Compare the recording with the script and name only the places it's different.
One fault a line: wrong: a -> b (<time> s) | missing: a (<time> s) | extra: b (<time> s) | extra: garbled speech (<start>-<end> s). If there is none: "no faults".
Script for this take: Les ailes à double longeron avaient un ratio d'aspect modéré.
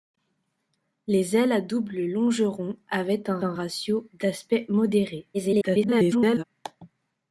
extra: un (3.4 s)
extra: garbled speech (5.3-6.4 s)